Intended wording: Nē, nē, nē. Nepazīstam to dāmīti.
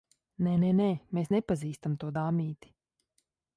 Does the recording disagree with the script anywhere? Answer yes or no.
yes